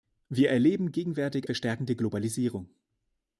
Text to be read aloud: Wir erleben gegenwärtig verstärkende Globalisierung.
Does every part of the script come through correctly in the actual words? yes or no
yes